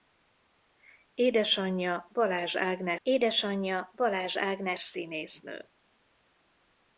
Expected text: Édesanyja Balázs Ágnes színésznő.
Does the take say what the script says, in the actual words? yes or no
no